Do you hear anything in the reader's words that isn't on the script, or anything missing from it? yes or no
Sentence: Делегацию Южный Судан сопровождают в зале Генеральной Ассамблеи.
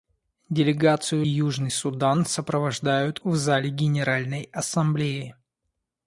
no